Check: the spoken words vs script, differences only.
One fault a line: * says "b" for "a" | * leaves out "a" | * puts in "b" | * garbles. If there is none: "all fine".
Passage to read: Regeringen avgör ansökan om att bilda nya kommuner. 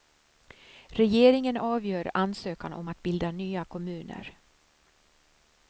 all fine